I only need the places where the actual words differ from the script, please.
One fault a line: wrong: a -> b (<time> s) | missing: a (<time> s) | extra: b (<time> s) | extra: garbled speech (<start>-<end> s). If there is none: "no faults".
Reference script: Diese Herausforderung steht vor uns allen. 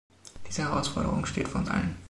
no faults